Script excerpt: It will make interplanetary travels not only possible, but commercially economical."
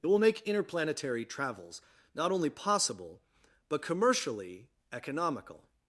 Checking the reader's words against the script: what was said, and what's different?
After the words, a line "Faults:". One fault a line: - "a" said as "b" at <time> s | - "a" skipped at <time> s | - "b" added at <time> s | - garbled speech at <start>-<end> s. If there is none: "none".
It will make interplanetary travels not only possible, but commercially economical."
Faults:
none